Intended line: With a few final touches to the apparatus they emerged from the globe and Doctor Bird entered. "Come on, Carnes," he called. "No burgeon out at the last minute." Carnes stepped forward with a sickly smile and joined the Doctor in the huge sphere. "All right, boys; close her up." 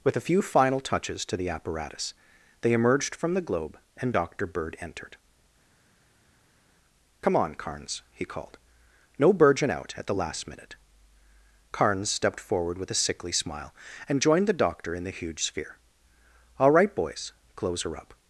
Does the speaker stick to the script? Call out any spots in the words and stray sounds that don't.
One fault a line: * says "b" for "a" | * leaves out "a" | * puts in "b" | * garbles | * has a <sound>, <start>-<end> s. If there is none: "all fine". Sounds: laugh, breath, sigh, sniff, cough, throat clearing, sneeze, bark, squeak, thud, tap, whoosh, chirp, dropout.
all fine